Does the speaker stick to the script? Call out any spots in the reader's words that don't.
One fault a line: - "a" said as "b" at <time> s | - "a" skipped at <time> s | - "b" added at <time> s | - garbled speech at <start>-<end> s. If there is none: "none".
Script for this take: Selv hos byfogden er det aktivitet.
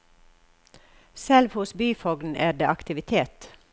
none